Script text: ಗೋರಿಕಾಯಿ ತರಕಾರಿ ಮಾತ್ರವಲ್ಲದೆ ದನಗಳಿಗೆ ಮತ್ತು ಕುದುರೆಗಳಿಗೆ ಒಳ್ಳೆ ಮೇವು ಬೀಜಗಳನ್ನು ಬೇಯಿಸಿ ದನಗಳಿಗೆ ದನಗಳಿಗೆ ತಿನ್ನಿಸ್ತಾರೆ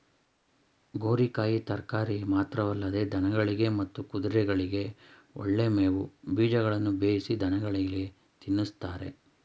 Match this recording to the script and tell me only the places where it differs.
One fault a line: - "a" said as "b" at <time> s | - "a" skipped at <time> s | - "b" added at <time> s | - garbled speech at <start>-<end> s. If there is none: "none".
- "ದನಗಳಿಗೆ" skipped at 8.0 s